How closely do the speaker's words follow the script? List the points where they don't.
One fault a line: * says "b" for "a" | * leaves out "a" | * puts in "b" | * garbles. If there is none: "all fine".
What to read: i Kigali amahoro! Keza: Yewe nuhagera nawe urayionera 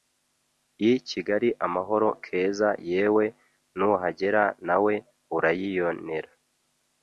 all fine